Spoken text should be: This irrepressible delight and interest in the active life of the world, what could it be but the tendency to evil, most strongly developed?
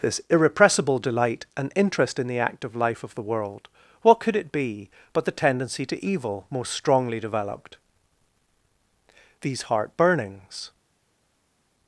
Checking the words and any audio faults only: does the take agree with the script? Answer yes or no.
no